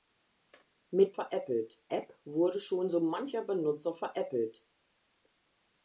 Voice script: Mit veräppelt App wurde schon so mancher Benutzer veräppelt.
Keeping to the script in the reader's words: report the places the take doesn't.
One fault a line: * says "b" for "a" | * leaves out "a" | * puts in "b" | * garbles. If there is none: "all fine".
all fine